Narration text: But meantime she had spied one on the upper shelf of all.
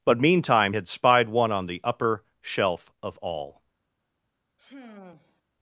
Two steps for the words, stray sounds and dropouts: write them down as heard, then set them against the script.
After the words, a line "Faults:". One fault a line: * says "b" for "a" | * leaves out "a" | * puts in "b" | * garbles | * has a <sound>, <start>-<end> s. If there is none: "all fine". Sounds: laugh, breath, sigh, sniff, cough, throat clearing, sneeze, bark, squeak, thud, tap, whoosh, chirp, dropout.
But meantime had spied one on the upper shelf of all.
Faults:
* leaves out "she"
* has a sigh, 4.6-5.4 s